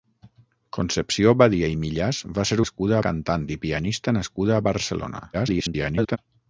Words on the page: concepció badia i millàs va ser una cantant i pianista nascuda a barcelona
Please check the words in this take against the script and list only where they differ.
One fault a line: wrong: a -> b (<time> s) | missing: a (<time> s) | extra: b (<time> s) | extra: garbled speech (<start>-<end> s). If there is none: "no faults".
wrong: una -> nascuda (2.6 s)
extra: garbled speech (5.3-6.2 s)